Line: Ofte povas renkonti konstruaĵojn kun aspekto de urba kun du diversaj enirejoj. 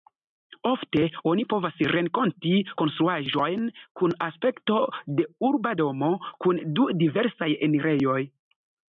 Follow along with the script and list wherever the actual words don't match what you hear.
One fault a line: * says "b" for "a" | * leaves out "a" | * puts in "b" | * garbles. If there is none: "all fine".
* puts in "oni"
* puts in "domo"